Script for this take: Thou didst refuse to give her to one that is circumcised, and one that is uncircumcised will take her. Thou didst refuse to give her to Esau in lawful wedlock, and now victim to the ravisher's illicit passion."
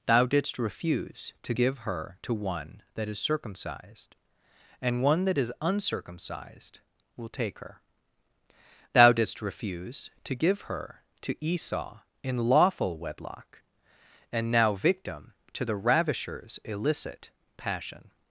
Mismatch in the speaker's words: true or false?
false